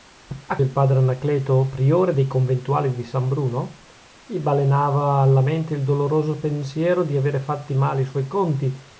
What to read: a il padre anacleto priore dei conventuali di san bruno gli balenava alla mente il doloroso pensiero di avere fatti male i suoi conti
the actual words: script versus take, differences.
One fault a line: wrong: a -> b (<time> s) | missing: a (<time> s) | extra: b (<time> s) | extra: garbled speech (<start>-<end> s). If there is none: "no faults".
no faults